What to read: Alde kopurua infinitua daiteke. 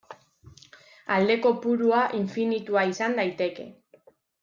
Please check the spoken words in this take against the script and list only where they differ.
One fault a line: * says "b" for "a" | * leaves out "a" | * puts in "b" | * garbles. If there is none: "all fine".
* puts in "izan"